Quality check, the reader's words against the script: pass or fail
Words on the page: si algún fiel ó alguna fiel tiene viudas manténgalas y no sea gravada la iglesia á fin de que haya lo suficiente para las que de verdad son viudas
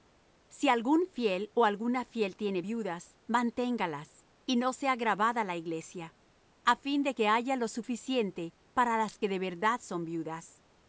pass